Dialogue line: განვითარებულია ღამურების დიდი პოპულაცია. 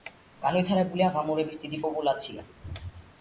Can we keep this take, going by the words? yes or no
yes